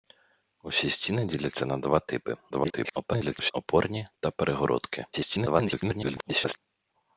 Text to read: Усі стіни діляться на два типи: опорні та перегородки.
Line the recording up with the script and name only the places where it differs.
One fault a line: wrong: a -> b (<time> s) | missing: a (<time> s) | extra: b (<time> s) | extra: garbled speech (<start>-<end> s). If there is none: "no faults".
extra: garbled speech (2.5-3.5 s)
extra: garbled speech (5.1-6.6 s)